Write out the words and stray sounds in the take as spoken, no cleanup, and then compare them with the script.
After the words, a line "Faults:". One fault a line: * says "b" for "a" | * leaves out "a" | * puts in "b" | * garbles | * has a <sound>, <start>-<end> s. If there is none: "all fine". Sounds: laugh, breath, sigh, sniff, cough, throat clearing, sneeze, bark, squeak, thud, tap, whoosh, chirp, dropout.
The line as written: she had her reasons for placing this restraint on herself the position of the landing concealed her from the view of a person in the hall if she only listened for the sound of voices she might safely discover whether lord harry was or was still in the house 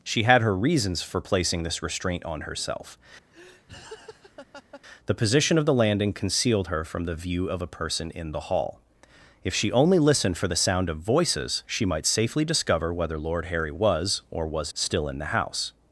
she had her reasons for placing this restraint on herself the position of the landing concealed her from the view of a person in the hall if she only listened for the sound of voices she might safely discover whether lord harry was or was still in the house
Faults:
* has a laugh, 3.3-4.8 s